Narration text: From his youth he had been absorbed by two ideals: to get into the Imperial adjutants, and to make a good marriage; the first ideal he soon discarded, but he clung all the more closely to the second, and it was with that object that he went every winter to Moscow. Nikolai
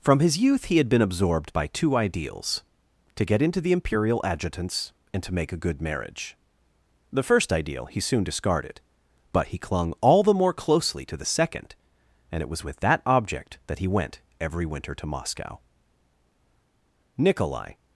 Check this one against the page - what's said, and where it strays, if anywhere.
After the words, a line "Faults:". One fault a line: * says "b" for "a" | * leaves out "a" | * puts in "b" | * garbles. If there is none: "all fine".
From his youth he had been absorbed by two ideals: to get into the Imperial adjutants, and to make a good marriage; the first ideal he soon discarded, but he clung all the more closely to the second, and it was with that object that he went every winter to Moscow. Nikolai
Faults:
all fine